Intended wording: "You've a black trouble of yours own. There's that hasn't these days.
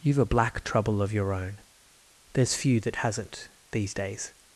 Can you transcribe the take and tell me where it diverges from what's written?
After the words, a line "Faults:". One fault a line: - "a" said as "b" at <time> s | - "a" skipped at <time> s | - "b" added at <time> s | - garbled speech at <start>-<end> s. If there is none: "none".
"You've a black trouble of your own. There's few that hasn't these days.
Faults:
- "yours" said as "your" at 1.1 s
- "few" added at 2.5 s